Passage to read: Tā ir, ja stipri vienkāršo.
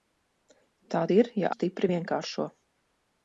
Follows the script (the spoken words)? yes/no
yes